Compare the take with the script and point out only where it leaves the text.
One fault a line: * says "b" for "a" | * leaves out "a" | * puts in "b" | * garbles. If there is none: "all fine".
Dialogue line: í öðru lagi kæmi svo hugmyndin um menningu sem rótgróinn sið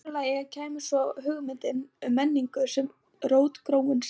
all fine